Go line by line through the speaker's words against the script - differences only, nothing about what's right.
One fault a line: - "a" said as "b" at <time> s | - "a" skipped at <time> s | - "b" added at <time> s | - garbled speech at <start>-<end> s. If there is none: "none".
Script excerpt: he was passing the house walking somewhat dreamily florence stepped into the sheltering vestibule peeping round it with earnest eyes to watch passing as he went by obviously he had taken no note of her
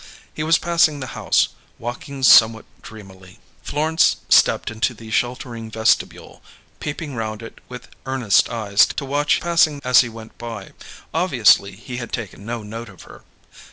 none